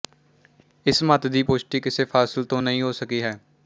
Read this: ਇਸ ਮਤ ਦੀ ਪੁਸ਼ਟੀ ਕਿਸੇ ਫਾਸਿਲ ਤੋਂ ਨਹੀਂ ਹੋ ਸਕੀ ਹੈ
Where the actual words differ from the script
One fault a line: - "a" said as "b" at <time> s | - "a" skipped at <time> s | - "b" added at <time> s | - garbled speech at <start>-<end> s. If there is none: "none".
none